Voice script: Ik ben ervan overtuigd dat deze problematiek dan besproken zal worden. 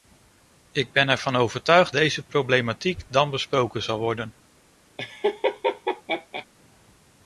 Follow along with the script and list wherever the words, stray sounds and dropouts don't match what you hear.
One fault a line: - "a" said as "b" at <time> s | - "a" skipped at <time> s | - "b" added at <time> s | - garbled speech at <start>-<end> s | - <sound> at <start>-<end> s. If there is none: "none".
- "dat" skipped at 1.9 s
- laugh at 5.0-6.5 s